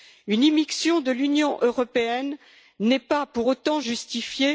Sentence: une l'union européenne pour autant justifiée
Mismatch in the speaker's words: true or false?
true